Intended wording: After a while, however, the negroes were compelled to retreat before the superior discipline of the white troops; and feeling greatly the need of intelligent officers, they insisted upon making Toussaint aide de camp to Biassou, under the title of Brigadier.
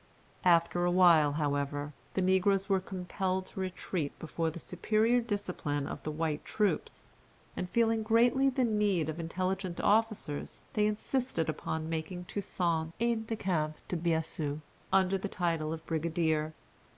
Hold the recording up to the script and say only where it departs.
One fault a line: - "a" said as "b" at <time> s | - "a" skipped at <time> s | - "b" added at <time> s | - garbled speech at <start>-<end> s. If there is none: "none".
none